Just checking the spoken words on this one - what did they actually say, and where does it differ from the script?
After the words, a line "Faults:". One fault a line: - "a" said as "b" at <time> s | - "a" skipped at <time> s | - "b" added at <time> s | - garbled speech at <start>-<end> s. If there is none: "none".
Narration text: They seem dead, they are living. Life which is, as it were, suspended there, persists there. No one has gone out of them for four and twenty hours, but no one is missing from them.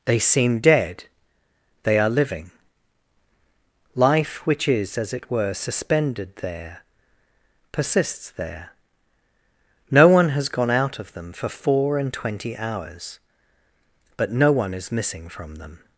They seem dead, they are living. Life which is, as it were, suspended there, persists there. No one has gone out of them for four and twenty hours, but no one is missing from them.
Faults:
none